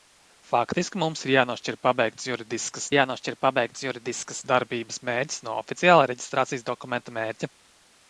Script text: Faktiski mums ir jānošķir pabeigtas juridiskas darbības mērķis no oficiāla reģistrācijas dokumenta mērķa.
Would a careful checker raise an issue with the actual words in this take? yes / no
yes